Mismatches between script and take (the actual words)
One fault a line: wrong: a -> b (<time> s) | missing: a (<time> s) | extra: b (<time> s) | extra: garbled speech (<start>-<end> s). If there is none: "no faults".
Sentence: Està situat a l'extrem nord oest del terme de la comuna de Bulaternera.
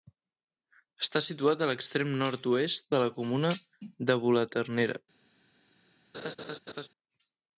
missing: del terme (2.9 s)